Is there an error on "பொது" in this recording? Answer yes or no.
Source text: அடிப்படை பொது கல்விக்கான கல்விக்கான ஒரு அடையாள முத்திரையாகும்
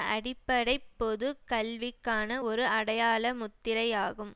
no